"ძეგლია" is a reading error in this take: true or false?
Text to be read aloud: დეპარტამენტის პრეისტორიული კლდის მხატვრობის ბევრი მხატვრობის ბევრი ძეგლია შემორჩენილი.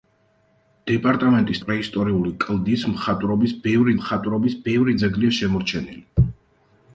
false